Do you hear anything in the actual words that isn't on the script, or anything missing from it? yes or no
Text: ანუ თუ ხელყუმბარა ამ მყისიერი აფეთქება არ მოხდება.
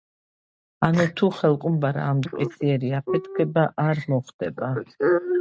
no